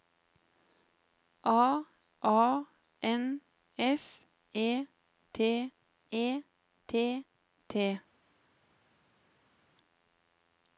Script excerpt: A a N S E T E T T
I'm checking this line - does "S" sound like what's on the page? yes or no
yes